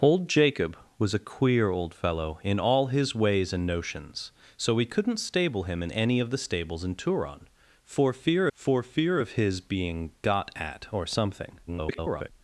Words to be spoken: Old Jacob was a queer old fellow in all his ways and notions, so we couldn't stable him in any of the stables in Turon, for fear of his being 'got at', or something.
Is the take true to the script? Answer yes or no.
no